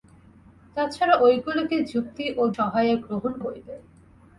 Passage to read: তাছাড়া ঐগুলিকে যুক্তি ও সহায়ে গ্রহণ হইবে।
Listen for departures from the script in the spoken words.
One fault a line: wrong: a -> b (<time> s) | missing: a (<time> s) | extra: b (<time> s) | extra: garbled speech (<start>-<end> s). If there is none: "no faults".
no faults